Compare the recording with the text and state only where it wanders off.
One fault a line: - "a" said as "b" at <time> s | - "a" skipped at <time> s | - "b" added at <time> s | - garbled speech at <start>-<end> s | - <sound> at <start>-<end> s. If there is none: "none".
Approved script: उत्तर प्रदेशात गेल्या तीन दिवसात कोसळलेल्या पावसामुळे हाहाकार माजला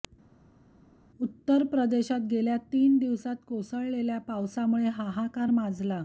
none